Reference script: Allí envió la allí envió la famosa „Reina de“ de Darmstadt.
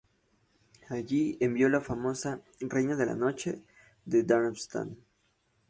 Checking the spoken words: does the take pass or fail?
fail